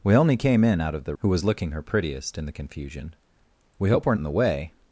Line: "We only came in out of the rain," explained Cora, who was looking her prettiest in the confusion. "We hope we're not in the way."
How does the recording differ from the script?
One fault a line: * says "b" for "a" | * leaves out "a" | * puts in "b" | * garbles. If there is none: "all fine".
* leaves out "rain explained Cora"
* leaves out "not"